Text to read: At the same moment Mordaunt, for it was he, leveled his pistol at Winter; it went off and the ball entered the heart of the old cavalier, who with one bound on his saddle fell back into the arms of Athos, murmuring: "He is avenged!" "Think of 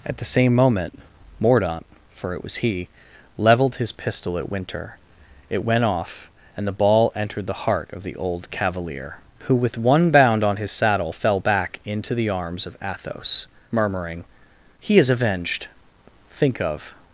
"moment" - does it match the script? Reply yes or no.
yes